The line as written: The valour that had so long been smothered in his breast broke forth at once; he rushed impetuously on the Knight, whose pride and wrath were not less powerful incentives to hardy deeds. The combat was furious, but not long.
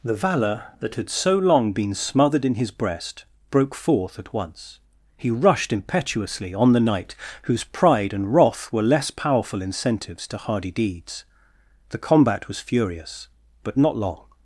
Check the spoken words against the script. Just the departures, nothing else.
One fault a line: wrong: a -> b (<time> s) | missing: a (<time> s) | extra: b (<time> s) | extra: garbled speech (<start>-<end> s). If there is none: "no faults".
missing: not (8.8 s)